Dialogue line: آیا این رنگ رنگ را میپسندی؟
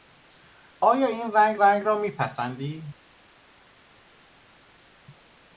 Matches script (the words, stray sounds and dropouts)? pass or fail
pass